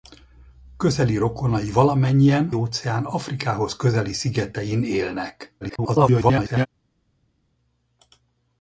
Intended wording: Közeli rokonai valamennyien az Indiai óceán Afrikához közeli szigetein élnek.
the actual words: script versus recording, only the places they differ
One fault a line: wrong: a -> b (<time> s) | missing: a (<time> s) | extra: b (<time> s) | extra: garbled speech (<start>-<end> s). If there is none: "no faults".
missing: az Indiai (2.5 s)
extra: garbled speech (5.6-6.7 s)